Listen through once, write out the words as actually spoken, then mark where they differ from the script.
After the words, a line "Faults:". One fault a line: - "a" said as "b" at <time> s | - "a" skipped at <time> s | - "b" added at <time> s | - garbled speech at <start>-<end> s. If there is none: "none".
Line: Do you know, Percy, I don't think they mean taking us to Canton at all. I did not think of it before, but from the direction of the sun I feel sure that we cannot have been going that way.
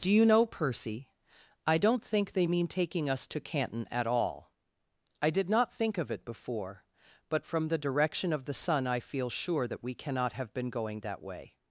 Do you know, Percy, I don't think they mean taking us to Canton at all. I did not think of it before, but from the direction of the sun I feel sure that we cannot have been going that way.
Faults:
none